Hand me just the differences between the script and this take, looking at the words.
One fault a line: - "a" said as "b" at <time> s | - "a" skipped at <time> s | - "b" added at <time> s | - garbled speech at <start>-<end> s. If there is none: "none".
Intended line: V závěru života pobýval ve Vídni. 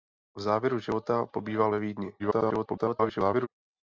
- garbled speech at 2.2-3.5 s